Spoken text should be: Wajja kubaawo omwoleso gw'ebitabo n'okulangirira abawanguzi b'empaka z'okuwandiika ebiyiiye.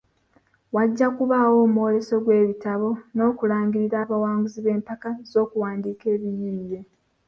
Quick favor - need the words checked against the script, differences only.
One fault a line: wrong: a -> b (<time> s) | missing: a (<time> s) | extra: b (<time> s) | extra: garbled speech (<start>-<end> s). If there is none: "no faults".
no faults